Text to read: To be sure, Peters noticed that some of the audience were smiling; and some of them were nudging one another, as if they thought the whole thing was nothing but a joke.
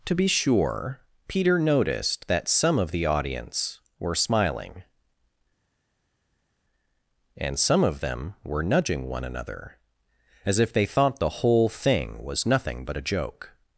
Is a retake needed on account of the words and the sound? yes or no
yes